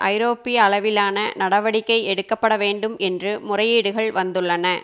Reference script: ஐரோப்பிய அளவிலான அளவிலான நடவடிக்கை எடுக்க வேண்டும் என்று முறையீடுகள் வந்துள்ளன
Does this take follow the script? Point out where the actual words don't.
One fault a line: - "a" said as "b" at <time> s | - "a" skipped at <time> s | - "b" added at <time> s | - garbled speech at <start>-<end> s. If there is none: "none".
- "அளவிலான" skipped at 1.2 s
- "பட" added at 2.3 s